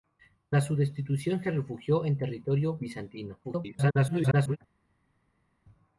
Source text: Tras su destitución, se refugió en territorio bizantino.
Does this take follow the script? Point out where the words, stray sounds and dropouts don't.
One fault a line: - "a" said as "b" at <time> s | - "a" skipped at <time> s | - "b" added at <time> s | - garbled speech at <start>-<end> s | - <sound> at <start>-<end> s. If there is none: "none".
- garbled speech at 3.4-4.6 s